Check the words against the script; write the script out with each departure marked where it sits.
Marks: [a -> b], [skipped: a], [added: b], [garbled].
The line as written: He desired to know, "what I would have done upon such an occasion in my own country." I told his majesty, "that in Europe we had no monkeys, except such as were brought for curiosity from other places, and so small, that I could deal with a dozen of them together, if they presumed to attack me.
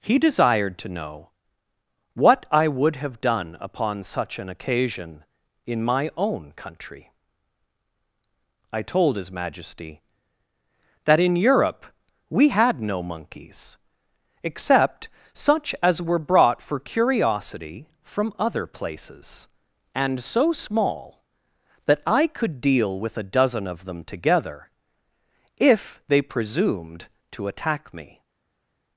He desired to know, "what I would have done upon such an occasion in my own country." I told his majesty, "that in Europe we had no monkeys, except such as were brought for curiosity from other places, and so small, that I could deal with a dozen of them together, if they presumed to attack me.